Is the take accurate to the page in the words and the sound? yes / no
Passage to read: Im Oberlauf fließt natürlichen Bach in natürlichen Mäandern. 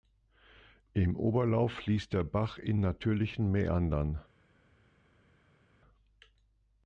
no